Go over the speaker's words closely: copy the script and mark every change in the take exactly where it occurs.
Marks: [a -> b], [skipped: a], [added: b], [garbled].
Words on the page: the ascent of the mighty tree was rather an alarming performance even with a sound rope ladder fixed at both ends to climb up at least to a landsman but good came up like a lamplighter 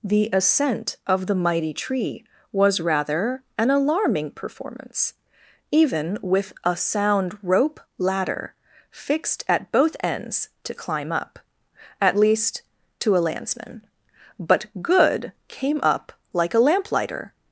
the ascent of the mighty tree was rather an alarming performance even with a sound rope ladder fixed at both ends to climb up at least to a landsman but good came up like a lamplighter